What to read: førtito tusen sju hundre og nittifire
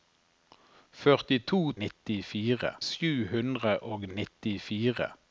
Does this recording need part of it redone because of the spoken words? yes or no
yes